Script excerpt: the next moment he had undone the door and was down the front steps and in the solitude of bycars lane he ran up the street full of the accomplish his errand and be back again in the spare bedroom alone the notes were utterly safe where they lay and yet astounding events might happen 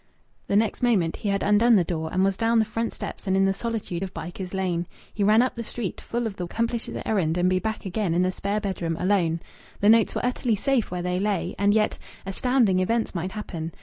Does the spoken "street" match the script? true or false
true